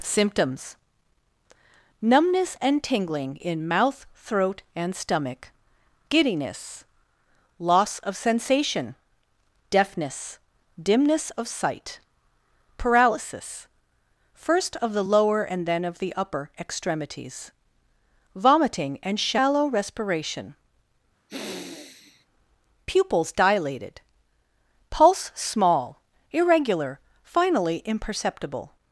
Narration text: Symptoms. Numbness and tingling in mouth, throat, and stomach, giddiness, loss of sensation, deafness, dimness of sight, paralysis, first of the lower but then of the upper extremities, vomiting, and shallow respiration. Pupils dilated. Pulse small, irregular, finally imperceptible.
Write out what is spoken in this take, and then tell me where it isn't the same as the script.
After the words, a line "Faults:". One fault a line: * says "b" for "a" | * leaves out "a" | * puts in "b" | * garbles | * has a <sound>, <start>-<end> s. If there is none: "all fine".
Symptoms. Numbness and tingling in mouth, throat, and stomach, giddiness, loss of sensation, deafness, dimness of sight, paralysis, first of the lower and then of the upper extremities, vomiting, and shallow respiration. Pupils dilated. Pulse small, irregular, finally imperceptible.
Faults:
* says "and" for "but"
* has a sniff, 21.3-22.3 s